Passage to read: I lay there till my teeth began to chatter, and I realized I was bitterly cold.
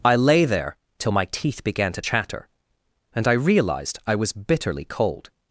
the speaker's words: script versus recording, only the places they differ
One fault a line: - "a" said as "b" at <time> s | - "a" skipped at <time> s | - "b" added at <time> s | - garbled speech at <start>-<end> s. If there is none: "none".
none